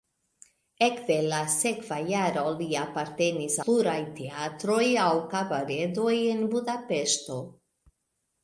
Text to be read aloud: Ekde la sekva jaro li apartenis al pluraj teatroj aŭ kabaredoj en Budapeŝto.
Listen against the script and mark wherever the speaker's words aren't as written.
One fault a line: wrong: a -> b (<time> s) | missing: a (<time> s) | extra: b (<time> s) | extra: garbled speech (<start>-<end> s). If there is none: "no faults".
missing: al (3.6 s)